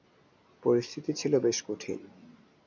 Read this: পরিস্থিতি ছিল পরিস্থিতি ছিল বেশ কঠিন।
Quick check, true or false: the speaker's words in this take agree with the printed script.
false